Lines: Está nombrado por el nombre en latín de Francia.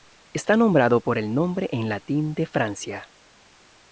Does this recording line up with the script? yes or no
yes